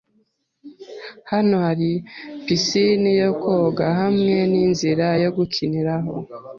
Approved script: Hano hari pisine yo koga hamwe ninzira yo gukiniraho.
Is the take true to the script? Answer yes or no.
yes